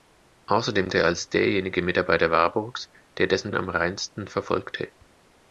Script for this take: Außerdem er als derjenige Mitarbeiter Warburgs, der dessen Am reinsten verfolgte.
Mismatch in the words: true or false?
false